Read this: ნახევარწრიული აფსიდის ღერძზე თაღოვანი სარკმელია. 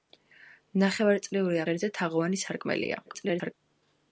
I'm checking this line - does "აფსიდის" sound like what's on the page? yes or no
no